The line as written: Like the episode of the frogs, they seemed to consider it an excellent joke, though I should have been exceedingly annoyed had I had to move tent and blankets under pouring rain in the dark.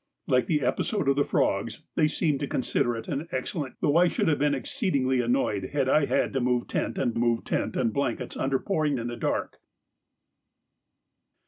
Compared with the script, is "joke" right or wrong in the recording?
wrong